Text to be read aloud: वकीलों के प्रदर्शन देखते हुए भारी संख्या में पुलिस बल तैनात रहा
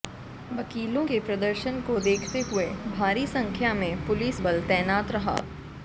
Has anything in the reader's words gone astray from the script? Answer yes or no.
yes